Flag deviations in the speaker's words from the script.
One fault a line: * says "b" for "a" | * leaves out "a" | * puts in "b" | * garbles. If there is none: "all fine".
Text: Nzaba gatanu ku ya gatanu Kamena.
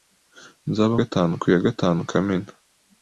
all fine